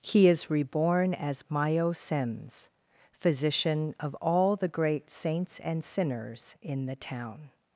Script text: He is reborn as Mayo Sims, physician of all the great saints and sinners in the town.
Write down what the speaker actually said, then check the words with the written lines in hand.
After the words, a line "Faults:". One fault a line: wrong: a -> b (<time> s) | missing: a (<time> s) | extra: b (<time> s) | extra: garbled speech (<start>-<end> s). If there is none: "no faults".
He is reborn as Mayo Sims, physician of all the great saints and sinners in the town.
Faults:
no faults